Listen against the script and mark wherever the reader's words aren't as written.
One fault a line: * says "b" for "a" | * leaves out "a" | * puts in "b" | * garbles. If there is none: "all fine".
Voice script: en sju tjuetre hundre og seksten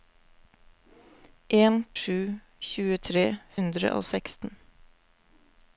all fine